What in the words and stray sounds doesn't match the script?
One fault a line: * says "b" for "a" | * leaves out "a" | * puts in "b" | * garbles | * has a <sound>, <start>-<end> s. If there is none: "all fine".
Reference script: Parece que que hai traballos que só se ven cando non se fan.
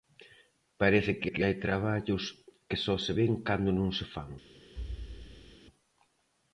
* has a thud, 4.8-5.6 s